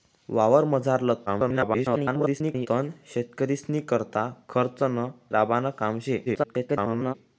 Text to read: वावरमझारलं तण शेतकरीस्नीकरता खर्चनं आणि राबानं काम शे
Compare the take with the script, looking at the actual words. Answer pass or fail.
fail